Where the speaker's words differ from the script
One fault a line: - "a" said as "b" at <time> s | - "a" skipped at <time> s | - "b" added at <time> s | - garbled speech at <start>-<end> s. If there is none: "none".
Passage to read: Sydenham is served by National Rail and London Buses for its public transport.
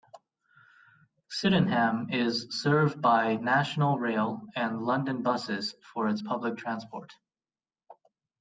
none